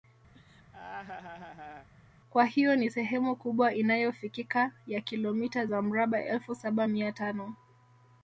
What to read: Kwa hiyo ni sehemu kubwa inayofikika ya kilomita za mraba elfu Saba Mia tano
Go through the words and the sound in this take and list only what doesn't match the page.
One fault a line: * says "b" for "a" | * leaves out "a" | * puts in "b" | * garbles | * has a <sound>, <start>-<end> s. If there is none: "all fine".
* has a laugh, 0.3-1.9 s